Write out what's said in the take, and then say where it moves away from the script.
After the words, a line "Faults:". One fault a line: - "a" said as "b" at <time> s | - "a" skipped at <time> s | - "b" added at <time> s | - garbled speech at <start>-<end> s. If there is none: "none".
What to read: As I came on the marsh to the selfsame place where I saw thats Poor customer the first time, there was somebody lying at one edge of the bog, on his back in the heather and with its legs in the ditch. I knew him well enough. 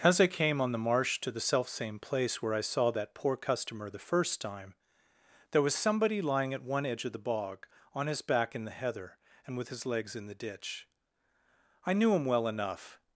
As I came on the marsh to the selfsame place where I saw that Poor customer the first time, there was somebody lying at one edge of the bog, on his back in the heather and with his legs in the ditch. I knew him well enough.
Faults:
- "thats" said as "that" at 2.9 s
- "its" said as "his" at 9.7 s